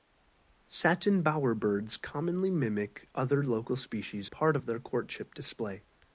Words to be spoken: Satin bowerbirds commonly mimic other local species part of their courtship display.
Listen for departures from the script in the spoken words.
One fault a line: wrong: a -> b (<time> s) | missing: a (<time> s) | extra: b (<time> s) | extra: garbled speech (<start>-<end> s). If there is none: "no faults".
no faults